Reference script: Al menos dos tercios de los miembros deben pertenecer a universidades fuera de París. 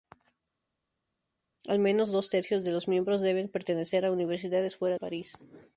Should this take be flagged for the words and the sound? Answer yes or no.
yes